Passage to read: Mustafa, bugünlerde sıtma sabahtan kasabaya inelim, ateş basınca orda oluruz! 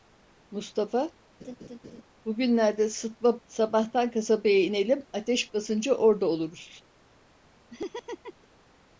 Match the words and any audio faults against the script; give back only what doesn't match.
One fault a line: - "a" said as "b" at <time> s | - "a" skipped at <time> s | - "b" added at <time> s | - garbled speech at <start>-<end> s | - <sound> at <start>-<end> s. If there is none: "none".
- laugh at 1.4-2.0 s
- laugh at 7.7-8.5 s